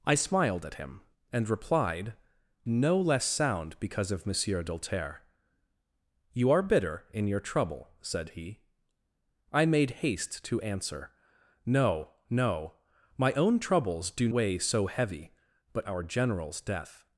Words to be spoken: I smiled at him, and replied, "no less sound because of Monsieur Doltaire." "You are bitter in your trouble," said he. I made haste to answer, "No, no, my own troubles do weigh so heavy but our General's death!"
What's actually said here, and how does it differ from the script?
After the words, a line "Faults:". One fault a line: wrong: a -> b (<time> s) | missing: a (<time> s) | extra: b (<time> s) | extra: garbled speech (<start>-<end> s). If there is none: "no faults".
I smiled at him, and replied, "no less sound because of Monsieur Doltaire." "You are bitter in your trouble," said he. I made haste to answer, "No, no, my own troubles do weigh so heavy but our General's death!"
Faults:
no faults